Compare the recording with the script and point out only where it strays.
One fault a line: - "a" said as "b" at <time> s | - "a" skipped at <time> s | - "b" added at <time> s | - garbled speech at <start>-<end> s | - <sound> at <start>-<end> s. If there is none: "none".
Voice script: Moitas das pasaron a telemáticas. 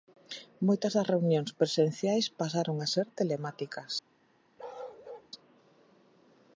- "reunións presenciais" added at 1.1 s
- "ser" added at 2.9 s
- bark at 4.6-5.3 s